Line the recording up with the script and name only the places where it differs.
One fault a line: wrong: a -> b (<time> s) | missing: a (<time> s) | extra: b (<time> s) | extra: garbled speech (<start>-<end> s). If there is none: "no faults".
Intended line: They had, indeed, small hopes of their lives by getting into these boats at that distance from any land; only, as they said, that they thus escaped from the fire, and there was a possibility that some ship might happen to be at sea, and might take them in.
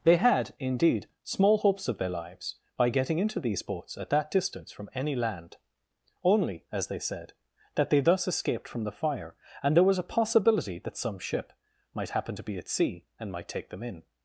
no faults